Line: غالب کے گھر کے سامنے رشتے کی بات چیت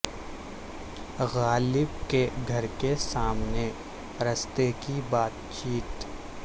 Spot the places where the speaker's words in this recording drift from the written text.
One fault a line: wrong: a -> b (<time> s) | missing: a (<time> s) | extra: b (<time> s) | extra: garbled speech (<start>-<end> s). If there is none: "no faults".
no faults